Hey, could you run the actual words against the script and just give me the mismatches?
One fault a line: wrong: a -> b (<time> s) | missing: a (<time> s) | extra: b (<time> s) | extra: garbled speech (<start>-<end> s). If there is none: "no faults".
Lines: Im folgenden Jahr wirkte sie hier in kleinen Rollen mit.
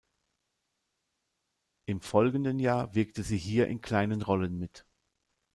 no faults